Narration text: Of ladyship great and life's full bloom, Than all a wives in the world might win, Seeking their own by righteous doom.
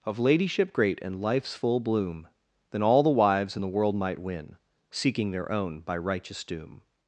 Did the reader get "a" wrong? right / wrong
wrong